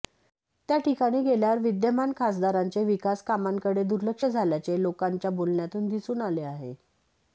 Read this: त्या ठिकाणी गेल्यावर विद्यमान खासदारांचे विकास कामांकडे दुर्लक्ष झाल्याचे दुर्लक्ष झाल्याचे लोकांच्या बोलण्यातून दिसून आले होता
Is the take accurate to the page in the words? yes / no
no